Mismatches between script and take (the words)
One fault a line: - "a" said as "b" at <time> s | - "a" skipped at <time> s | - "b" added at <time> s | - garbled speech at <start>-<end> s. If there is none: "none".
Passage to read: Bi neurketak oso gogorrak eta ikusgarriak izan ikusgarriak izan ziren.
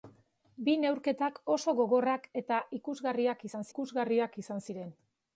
none